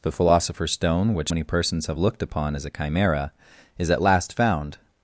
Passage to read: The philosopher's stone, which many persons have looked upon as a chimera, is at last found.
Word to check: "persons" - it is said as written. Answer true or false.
true